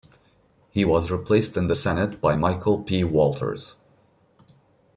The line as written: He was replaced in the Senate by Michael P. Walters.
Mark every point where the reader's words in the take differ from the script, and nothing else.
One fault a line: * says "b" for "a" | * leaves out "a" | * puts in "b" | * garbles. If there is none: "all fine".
all fine